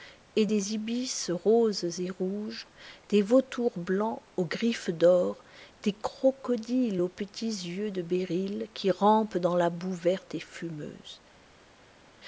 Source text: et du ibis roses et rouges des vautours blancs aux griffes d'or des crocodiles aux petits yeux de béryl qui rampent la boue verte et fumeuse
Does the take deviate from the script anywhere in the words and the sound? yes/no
yes